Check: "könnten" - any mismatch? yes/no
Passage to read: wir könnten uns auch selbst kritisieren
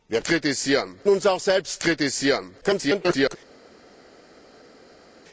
yes